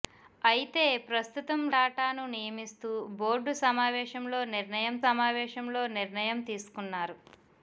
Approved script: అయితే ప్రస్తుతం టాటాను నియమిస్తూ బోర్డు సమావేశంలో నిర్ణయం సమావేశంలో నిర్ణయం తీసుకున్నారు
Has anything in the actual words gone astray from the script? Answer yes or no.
no